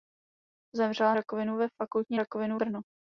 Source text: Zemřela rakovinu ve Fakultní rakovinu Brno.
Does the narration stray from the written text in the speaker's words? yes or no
no